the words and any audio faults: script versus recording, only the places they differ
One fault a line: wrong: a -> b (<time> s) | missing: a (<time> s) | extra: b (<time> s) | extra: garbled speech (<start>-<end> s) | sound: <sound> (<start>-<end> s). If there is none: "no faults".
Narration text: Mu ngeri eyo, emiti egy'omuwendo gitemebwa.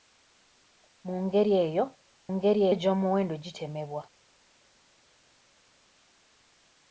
wrong: emiti -> ngeri (2.3 s)